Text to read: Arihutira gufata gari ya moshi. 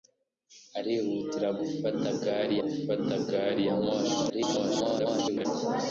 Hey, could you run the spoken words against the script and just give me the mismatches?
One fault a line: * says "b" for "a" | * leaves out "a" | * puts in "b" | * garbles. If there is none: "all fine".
* puts in "gufata gari"
* garbles